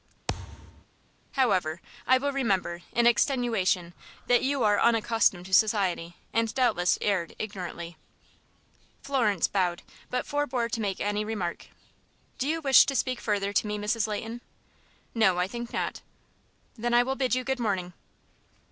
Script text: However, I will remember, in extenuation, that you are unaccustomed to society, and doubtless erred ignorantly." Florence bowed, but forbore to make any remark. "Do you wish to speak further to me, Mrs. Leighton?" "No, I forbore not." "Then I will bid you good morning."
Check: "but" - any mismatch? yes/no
no